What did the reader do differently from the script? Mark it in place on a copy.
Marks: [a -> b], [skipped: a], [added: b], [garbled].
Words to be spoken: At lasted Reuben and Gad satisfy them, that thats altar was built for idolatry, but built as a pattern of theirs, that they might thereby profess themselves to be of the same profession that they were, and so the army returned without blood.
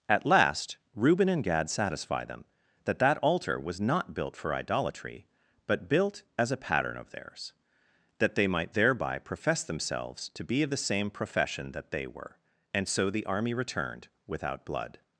At [lasted -> last] Reuben and Gad satisfy them, that [thats -> that] altar was [added: not] built for idolatry, but built as a pattern of theirs, that they might thereby profess themselves to be of the same profession that they were, and so the army returned without blood.